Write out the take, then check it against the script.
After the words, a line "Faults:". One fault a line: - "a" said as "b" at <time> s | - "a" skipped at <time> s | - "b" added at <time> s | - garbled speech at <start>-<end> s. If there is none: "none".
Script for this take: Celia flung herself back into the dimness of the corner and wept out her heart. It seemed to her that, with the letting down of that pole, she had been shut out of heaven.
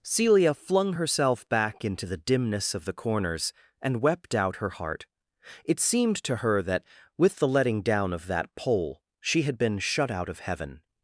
Celia flung herself back into the dimness of the corners and wept out her heart. It seemed to her that, with the letting down of that pole, she had been shut out of heaven.
Faults:
- "corner" said as "corners" at 2.9 s